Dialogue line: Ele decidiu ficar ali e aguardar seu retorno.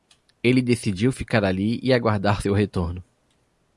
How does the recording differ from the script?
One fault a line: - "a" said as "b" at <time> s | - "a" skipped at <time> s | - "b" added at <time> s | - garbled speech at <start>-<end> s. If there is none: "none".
none